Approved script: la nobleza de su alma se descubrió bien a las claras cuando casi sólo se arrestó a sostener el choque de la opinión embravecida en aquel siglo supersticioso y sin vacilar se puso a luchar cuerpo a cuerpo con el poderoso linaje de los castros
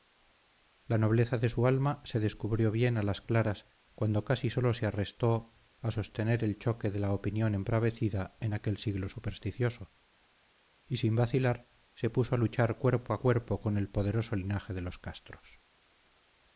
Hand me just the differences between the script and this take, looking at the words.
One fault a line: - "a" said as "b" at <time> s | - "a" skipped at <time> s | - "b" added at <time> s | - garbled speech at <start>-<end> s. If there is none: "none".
none